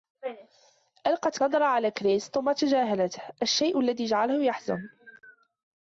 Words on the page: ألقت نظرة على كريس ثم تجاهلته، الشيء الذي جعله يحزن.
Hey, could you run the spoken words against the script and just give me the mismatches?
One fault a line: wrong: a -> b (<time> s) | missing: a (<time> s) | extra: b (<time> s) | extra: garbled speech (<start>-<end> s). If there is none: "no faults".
no faults